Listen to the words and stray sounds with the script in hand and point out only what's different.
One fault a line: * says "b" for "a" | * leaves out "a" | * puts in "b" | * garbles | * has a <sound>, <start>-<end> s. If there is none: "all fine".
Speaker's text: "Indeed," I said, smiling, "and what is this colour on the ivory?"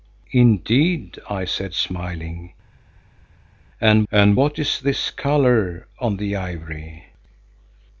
* puts in "and"